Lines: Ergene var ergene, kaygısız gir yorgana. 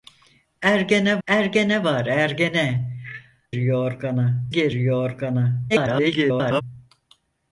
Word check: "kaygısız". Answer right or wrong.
wrong